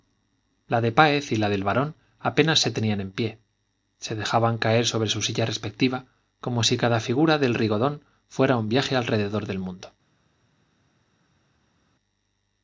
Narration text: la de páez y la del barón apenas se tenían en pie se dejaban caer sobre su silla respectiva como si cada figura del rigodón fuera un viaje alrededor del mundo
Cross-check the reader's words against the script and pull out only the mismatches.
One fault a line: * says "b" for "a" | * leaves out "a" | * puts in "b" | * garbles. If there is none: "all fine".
all fine